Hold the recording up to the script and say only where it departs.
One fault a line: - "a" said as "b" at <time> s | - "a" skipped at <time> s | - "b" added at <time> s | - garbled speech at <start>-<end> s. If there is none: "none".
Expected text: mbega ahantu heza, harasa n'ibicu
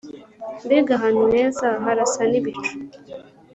none